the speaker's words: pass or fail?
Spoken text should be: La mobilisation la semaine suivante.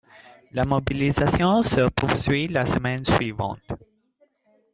fail